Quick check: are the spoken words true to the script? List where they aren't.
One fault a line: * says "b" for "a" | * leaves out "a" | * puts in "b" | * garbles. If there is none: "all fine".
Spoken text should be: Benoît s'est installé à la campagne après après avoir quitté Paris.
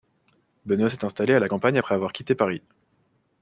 * leaves out "après"